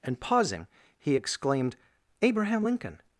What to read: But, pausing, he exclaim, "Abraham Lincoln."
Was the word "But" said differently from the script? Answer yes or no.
yes